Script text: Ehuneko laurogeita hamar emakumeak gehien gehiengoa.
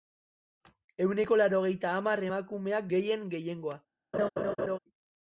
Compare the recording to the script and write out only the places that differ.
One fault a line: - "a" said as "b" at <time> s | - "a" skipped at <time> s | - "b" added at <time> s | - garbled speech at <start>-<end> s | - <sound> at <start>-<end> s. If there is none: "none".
- laugh at 4.1-4.8 s